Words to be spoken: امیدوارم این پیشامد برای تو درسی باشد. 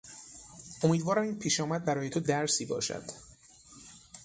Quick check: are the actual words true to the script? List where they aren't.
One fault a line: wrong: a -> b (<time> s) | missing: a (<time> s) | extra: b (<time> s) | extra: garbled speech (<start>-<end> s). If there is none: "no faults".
no faults